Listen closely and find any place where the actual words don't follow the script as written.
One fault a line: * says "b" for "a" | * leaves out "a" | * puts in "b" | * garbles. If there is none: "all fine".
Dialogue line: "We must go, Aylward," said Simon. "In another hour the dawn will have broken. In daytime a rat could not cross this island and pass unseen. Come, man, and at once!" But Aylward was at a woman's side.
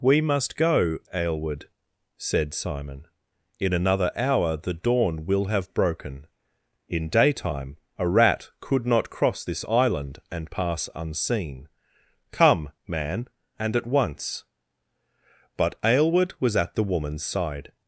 * says "the" for "a"